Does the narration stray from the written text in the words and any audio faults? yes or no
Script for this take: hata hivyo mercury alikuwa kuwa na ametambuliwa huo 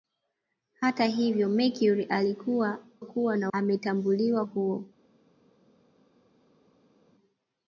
no